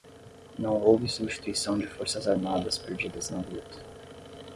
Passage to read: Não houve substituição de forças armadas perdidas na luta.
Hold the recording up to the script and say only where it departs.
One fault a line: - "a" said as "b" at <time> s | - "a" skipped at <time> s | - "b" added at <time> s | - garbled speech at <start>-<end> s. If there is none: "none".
none